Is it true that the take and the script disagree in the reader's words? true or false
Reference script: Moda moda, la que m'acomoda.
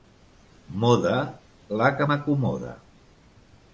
true